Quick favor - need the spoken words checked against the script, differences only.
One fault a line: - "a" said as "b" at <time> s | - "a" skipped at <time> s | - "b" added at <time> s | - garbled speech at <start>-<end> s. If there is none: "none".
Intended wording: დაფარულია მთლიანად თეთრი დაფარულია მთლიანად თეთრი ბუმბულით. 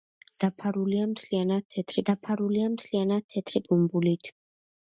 none